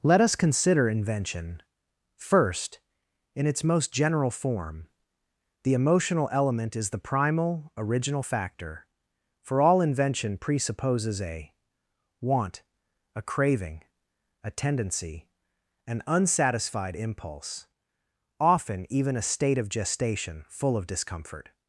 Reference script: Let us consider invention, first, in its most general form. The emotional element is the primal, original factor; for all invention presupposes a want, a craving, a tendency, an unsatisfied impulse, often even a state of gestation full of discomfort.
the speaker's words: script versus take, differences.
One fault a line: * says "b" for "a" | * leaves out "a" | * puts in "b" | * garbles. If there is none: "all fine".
all fine